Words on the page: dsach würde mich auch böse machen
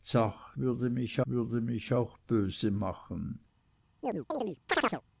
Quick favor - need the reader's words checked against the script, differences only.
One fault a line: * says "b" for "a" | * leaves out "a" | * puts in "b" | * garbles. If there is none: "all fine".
* puts in "würde mich"